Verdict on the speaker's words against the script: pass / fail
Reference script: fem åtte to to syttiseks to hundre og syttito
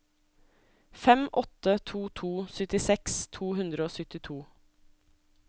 pass